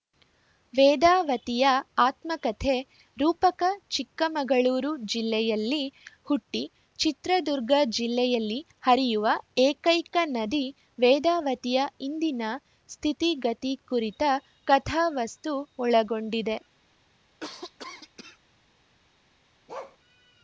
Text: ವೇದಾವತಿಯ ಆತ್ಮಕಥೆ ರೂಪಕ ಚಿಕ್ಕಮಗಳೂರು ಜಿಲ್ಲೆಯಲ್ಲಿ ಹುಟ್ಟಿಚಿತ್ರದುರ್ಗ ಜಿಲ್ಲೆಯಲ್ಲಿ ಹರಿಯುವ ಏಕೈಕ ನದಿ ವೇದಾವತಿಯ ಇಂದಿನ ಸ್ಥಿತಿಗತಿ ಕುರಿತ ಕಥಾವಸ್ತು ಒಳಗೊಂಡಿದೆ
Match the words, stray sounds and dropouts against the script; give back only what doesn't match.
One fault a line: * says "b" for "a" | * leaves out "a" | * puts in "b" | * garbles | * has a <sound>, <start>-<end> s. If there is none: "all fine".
* has a cough, 17.4-18.4 s
* has a bark, 19.7-20.0 s